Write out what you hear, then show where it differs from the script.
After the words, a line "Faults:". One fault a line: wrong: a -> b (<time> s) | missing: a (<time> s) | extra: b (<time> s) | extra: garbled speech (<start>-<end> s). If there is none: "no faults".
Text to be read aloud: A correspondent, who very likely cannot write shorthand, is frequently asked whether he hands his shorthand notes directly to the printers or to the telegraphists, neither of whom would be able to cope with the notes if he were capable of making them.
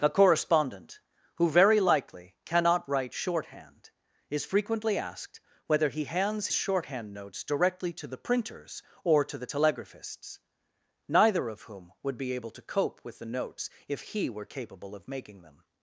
A correspondent, who very likely cannot write shorthand, is frequently asked whether he hands shorthand notes directly to the printers or to the telegraphists, neither of whom would be able to cope with the notes if he were capable of making them.
Faults:
missing: his (6.5 s)